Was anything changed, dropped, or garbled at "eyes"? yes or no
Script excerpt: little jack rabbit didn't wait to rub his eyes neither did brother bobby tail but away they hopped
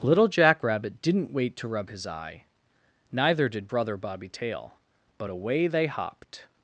yes